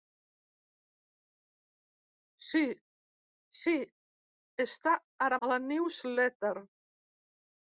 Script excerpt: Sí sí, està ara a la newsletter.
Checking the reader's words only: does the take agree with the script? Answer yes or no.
yes